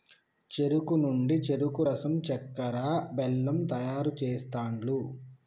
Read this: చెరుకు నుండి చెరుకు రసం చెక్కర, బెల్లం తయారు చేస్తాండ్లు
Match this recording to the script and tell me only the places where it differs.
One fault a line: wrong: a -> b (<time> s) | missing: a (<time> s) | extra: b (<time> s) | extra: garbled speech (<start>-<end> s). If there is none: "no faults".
no faults